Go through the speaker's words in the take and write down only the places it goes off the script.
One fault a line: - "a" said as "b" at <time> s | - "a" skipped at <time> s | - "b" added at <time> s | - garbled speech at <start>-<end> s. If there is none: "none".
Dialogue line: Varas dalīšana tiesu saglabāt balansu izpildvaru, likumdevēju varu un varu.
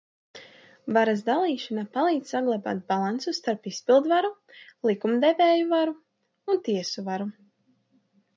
- "tiesu" said as "palīdz" at 2.0 s
- "starp" added at 3.4 s
- "tiesu" added at 6.7 s